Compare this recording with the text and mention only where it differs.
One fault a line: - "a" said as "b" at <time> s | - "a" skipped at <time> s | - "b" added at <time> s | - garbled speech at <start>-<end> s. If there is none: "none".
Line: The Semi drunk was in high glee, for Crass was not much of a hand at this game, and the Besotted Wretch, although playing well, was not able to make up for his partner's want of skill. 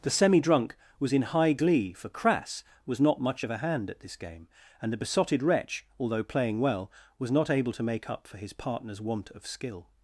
none